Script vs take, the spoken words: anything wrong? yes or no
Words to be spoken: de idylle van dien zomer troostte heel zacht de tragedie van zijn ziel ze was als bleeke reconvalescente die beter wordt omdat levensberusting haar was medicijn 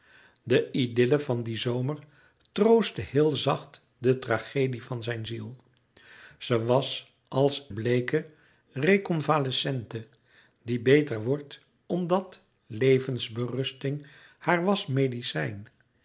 no